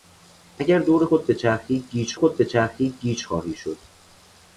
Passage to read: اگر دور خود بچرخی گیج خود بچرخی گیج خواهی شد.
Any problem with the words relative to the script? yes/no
no